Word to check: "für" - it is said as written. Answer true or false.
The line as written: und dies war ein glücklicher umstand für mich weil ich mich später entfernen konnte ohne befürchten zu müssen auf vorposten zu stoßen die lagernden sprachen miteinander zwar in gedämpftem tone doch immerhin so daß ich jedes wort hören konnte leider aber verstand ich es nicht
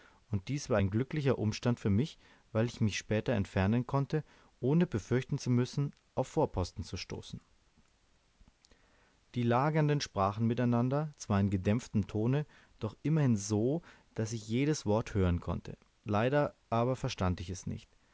true